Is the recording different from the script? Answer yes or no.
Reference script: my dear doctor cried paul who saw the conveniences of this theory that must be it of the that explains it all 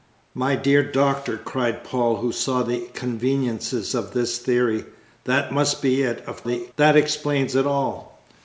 no